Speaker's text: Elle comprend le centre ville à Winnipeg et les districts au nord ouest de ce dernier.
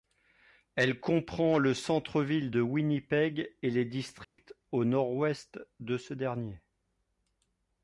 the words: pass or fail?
fail